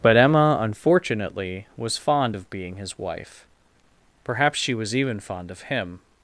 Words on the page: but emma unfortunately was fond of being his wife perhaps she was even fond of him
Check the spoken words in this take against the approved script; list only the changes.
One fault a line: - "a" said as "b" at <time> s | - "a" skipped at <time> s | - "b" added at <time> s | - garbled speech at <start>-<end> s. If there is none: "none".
none